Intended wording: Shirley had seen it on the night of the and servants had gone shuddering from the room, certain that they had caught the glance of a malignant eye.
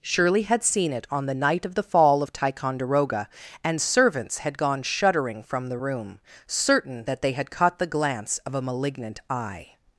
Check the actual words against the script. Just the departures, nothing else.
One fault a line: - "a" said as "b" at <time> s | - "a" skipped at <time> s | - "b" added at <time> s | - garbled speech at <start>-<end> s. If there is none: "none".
- "fall of Ticonderoga" added at 1.8 s